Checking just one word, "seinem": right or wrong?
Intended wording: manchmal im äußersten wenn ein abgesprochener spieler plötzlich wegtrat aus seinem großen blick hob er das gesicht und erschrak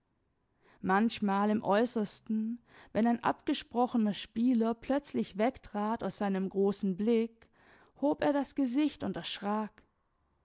right